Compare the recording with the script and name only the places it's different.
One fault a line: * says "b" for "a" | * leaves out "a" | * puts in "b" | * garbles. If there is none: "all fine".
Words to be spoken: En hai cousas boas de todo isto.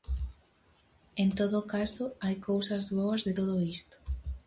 * puts in "todo caso"